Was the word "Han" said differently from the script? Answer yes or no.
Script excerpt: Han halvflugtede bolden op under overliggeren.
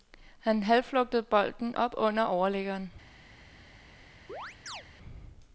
no